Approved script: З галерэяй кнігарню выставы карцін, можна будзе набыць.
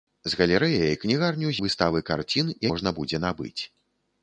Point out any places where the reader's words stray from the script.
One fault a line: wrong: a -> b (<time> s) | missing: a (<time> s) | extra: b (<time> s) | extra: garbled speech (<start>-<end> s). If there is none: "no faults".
no faults